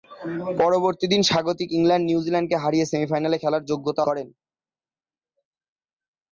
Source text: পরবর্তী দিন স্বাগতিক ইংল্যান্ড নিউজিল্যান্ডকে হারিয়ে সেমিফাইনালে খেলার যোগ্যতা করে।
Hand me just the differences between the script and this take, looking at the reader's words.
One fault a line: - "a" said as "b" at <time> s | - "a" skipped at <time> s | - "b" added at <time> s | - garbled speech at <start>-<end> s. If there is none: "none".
none